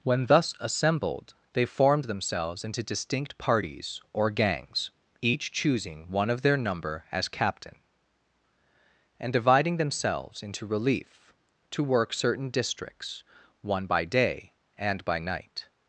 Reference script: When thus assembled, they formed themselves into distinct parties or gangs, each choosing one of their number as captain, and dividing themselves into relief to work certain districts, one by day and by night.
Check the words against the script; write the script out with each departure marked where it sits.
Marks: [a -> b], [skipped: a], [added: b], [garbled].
When thus assembled, they formed themselves into distinct parties or gangs, each choosing one of their number as captain, and dividing themselves into relief to work certain districts, one by day and by night.